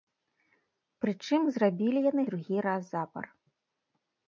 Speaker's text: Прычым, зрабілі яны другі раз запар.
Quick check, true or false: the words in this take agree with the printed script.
true